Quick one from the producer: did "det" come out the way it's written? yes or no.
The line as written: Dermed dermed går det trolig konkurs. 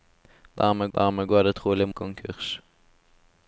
yes